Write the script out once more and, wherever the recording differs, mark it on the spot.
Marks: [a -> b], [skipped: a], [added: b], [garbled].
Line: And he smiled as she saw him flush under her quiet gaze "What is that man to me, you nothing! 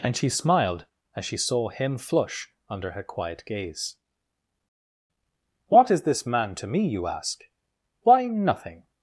And [he -> she] smiled as she saw him flush under her quiet gaze "What is [that -> this] man to me, you [added: ask Why] nothing!